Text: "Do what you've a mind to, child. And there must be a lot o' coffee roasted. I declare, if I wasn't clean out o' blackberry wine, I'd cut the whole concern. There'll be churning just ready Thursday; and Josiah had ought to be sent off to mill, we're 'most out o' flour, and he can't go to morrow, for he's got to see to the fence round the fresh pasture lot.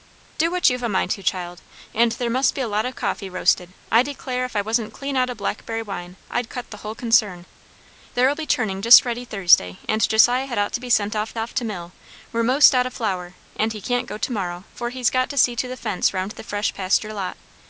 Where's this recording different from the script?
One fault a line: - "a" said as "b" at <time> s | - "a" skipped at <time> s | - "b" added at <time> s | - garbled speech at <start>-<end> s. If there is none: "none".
- "off" added at 11.4 s